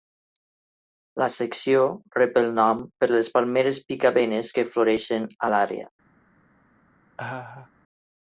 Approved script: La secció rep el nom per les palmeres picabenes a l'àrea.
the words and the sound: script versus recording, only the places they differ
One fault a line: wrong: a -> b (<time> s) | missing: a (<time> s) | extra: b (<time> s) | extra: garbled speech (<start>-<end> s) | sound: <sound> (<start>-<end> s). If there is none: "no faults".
extra: que floreixen (4.6 s)
sound: laugh (7.2-7.7 s)